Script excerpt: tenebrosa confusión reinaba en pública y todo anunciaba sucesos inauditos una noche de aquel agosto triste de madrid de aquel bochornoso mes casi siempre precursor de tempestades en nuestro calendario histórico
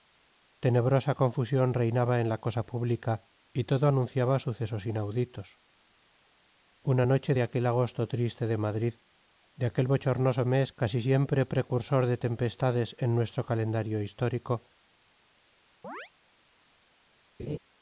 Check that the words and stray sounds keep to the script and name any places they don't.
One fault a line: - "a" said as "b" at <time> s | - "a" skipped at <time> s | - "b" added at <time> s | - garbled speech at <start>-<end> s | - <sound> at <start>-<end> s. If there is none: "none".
- "la cosa" added at 2.3 s
- chirp at 15.8-16.1 s
- laugh at 17.4-17.6 s